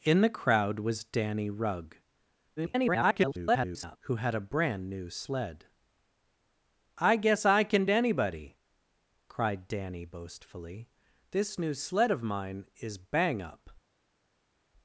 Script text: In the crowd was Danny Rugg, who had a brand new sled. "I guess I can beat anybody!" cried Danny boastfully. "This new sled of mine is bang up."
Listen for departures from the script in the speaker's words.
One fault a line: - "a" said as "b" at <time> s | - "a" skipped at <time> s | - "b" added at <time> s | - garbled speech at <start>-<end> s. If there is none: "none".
- garbled speech at 2.6-4.0 s
- "beat" skipped at 7.9 s